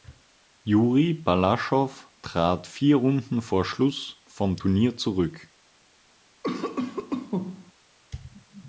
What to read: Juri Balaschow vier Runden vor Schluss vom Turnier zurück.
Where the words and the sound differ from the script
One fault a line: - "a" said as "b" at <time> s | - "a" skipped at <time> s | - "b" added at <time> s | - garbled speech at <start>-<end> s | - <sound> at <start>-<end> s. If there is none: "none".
- "trat" added at 2.2 s
- cough at 6.4-7.7 s